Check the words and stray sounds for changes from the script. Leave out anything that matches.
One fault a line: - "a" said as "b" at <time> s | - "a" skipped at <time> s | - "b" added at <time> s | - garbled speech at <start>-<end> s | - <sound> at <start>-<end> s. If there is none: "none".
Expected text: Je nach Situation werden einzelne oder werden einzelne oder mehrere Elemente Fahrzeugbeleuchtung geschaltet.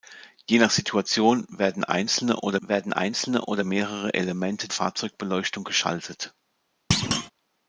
- thud at 6.9-7.3 s